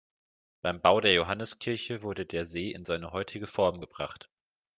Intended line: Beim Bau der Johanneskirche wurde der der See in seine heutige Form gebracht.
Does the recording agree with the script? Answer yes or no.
no